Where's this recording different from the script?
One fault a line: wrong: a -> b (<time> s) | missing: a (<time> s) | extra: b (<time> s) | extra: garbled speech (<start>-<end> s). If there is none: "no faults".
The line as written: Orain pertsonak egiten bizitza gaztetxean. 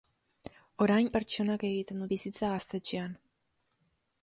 no faults